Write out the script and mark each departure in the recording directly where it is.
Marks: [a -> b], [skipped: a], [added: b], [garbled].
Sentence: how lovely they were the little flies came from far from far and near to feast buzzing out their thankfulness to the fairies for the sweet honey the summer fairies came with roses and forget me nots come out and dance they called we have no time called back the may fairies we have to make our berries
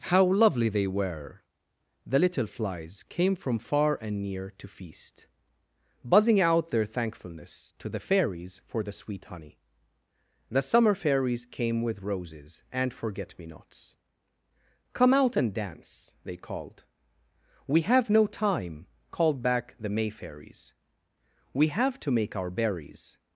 how lovely they were the little flies came from far [skipped: from far] and near to feast buzzing out their thankfulness to the fairies for the sweet honey the summer fairies came with roses and forget me nots come out and dance they called we have no time called back the may fairies we have to make our berries